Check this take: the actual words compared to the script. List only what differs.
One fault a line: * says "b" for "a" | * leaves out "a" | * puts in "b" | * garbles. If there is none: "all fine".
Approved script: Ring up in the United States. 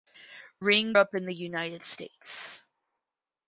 all fine